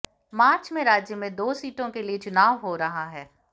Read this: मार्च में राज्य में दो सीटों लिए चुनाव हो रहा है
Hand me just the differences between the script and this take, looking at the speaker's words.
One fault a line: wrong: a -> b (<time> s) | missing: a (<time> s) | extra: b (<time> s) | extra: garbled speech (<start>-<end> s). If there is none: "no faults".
extra: के (1.9 s)